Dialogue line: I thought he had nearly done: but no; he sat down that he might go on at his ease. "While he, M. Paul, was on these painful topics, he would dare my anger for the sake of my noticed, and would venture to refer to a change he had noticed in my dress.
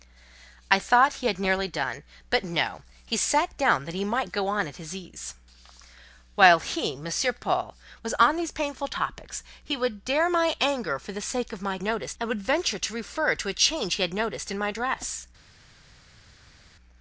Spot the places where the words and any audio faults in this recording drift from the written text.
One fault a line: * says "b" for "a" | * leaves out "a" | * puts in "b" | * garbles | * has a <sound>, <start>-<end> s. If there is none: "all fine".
all fine